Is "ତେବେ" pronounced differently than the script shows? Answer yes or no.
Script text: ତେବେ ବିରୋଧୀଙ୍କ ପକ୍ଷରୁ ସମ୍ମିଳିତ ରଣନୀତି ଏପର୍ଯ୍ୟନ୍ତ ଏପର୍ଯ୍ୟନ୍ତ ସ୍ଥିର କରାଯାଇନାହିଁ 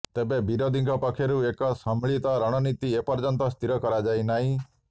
no